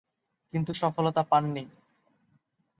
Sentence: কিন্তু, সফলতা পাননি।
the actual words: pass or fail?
pass